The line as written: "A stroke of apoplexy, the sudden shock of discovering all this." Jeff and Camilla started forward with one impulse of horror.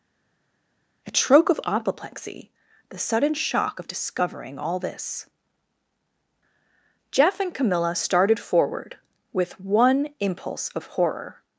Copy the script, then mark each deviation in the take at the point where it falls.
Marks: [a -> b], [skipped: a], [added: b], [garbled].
"A stroke of apoplexy, the sudden shock of discovering all this." Jeff and Camilla started forward with one impulse of horror.